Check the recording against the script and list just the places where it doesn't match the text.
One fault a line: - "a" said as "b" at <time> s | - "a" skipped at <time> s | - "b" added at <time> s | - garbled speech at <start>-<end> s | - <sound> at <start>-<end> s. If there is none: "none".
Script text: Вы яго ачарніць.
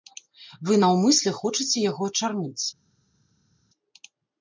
- "наўмысля хочаце" added at 0.8 s